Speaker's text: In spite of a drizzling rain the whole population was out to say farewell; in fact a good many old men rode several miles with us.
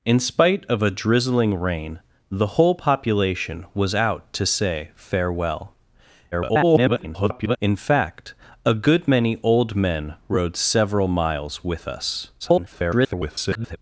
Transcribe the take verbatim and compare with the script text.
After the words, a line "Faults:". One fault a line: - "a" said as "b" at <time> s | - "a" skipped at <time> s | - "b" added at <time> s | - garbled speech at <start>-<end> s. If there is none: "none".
In spite of a drizzling rain the whole population was out to say farewell; [garbled] in fact a good many old men rode several miles with us. [garbled]
Faults:
- garbled speech at 6.3-7.6 s
- garbled speech at 12.4-13.8 s